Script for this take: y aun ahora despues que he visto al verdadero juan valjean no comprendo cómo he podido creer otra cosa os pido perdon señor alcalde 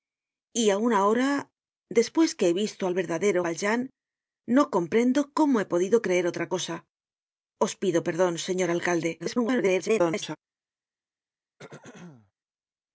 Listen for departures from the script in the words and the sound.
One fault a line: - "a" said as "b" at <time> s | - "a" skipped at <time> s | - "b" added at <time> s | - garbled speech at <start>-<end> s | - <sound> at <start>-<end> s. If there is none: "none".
- "juan" skipped at 3.4 s
- garbled speech at 9.2-10.4 s
- throat clearing at 11.6-12.3 s